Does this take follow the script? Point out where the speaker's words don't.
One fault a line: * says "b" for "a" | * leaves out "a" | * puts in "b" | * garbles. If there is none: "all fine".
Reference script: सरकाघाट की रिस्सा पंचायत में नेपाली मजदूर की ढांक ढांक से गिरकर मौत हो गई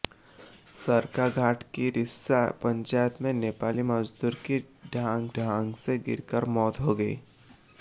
all fine